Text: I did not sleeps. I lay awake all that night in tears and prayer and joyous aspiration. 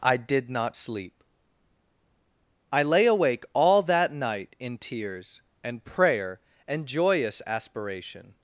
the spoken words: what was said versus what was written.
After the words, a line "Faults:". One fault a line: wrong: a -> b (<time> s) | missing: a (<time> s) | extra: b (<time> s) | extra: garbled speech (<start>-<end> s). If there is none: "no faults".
I did not sleep. I lay awake all that night in tears and prayer and joyous aspiration.
Faults:
wrong: sleeps -> sleep (0.8 s)